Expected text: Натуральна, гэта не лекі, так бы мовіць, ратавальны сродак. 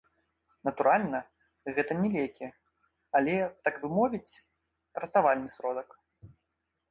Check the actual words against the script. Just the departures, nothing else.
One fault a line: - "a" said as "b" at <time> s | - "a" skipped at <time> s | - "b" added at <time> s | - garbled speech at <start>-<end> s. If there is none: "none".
- "але" added at 3.2 s